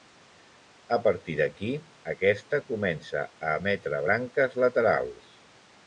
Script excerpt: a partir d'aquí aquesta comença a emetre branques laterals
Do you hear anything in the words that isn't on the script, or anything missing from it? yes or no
no